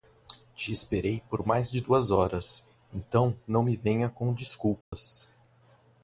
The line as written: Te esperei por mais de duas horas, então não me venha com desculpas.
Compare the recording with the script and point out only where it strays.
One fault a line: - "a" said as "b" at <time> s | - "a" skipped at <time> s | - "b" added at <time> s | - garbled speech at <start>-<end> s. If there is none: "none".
none